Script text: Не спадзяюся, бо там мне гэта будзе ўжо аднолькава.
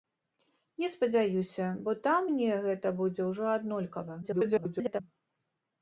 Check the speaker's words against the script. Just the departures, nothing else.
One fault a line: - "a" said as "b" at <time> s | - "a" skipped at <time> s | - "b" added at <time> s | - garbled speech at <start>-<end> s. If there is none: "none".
- garbled speech at 4.2-5.0 s